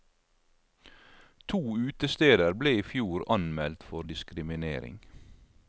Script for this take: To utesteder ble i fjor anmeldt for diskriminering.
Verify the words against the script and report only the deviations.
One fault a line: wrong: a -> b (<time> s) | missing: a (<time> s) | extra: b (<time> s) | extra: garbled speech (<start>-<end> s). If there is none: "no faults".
no faults